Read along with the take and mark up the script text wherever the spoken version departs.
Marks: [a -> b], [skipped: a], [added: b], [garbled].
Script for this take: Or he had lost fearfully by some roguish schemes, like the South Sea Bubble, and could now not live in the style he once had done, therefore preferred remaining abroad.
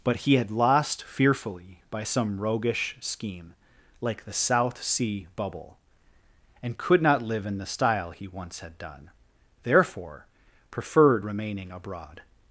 [Or -> But] he had lost fearfully by some roguish [schemes, -> scheme] like the South Sea Bubble, and could [skipped: now] not live in the style he once had done, therefore preferred remaining abroad.